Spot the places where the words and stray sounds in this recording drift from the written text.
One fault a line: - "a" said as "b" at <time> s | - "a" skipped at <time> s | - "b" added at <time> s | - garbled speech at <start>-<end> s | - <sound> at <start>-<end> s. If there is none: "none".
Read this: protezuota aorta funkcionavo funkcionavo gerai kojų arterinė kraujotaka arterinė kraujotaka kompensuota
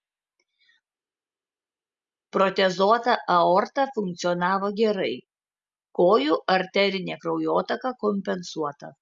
- "funkcionavo" skipped at 4.7 s
- "arterinė kraujotaka" skipped at 7.9 s